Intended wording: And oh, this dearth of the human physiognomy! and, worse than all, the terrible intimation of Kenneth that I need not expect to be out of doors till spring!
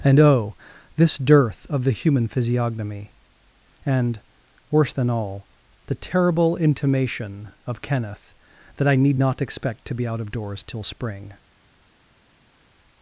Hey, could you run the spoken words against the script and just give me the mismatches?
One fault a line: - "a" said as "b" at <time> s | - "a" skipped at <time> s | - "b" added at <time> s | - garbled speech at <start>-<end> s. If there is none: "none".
none